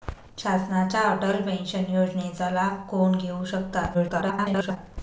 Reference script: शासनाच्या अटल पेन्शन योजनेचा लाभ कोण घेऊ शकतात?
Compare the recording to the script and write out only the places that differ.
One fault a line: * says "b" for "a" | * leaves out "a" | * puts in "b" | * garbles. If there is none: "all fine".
* garbles